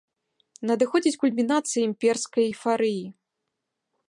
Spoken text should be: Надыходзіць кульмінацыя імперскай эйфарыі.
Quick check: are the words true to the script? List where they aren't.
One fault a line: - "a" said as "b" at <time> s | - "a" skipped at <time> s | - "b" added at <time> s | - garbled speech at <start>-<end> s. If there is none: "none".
none